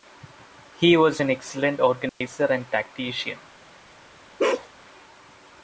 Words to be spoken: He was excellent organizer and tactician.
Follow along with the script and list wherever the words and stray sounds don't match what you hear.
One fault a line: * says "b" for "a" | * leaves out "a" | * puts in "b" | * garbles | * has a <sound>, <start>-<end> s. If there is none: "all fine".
* puts in "an"
* has a dropout, 2.1-2.2 s
* has a bark, 4.4-4.7 s